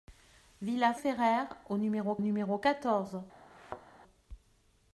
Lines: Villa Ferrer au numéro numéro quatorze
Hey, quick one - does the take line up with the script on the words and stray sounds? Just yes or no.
no